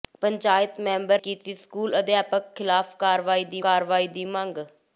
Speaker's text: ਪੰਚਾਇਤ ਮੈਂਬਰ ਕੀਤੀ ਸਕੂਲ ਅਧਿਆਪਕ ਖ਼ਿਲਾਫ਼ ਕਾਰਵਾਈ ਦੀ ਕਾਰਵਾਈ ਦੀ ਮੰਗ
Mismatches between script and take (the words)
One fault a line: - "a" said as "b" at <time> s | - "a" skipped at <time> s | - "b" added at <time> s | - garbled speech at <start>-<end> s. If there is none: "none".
none